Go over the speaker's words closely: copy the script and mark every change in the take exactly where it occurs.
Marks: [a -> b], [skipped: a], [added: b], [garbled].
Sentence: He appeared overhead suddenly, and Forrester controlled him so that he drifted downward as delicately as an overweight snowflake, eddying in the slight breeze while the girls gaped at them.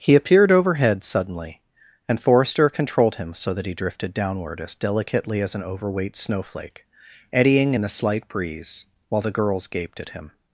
He appeared overhead suddenly, and Forrester controlled him so that he drifted downward as delicately as an overweight snowflake, eddying in the slight breeze while the girls gaped at [them. -> him]